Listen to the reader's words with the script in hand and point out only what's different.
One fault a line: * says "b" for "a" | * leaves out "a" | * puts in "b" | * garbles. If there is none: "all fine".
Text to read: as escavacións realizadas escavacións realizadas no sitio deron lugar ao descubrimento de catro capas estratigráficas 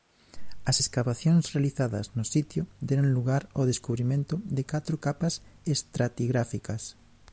* leaves out "escavacións realizadas"